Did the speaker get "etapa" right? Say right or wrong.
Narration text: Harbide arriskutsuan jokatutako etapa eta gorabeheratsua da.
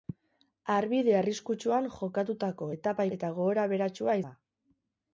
right